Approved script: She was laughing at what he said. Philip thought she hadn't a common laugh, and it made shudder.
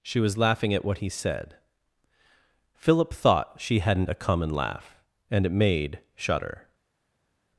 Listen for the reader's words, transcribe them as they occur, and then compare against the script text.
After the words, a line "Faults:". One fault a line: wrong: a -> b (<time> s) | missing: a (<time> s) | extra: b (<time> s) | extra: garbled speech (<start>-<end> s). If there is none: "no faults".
She was laughing at what he said. Philip thought she hadn't a common laugh, and it made shudder.
Faults:
no faults